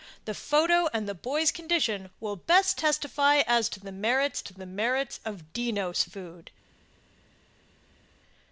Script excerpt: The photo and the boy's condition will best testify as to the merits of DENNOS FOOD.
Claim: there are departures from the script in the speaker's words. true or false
true